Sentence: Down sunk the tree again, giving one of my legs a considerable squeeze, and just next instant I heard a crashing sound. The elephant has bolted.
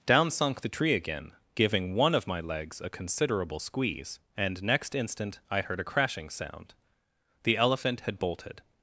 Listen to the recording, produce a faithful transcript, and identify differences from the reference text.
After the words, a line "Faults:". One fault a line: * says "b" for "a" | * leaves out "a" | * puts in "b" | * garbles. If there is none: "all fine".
Down sunk the tree again, giving one of my legs a considerable squeeze, and next instant I heard a crashing sound. The elephant had bolted.
Faults:
* leaves out "just"
* says "had" for "has"